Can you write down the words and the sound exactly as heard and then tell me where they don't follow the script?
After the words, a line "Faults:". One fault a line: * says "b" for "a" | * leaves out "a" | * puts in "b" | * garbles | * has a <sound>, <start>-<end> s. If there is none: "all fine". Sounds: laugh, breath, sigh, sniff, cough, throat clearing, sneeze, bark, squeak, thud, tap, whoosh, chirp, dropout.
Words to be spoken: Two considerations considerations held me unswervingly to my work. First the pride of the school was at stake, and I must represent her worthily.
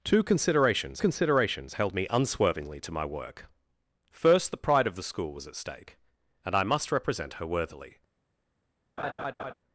Two considerations considerations held me unswervingly to my work. First the pride of the school was at stake, and I must represent her worthily.
Faults:
* has a laugh, 9.0-9.5 s